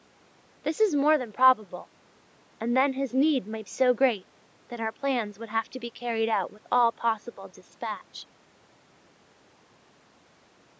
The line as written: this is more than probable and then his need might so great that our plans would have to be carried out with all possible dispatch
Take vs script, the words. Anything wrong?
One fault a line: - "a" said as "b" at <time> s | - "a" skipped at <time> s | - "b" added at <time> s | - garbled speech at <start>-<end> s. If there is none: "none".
none